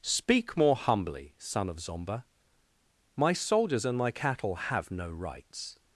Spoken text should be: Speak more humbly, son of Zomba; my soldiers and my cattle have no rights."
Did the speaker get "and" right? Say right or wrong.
right